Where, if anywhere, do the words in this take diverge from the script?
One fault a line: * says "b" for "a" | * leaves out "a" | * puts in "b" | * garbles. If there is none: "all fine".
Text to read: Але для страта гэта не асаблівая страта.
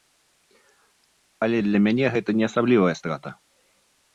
* says "мяне" for "страта"